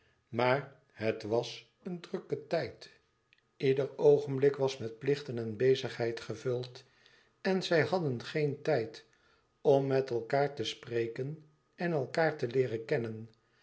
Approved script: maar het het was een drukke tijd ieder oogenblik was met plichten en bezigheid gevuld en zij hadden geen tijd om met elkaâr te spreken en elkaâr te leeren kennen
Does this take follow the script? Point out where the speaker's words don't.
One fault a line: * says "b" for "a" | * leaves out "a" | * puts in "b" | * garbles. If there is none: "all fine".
* leaves out "het"